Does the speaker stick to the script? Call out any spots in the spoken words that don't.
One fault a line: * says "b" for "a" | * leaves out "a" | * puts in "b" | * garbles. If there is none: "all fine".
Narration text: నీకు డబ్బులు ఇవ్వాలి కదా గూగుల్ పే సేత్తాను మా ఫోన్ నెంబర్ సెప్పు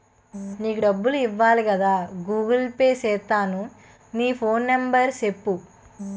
* says "నీ" for "మా"